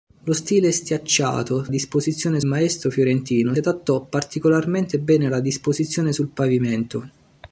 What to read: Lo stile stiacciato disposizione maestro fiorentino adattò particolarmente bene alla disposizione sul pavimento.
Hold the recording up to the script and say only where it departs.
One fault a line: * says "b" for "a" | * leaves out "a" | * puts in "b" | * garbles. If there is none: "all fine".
all fine